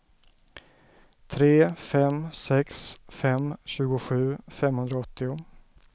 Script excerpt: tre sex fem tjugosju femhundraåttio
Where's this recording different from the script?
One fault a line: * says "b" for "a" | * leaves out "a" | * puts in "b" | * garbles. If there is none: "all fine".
* puts in "fem"